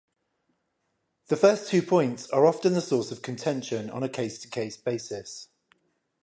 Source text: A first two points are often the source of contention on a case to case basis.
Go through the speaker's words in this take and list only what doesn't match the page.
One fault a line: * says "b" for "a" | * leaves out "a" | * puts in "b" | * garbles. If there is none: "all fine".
* says "The" for "A"